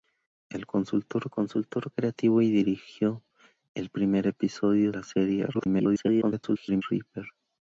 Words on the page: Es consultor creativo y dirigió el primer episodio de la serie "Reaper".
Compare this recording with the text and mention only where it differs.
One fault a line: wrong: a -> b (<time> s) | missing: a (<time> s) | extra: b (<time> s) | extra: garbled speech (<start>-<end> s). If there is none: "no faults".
extra: consultor (1.3 s)
missing: de (4.9 s)
extra: garbled speech (5.5-6.8 s)